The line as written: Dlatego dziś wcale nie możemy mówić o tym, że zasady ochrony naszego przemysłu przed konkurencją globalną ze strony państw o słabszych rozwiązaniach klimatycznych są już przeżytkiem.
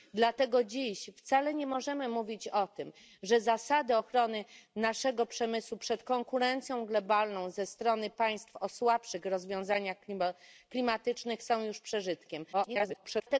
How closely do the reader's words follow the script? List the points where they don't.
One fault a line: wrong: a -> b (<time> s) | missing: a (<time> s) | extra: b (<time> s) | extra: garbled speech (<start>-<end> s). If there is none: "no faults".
extra: garbled speech (12.5-13.4 s)